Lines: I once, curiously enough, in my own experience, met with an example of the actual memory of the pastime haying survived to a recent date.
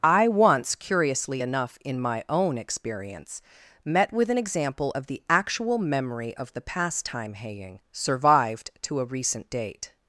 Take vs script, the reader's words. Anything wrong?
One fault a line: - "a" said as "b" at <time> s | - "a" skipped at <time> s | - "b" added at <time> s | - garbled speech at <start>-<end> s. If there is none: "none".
none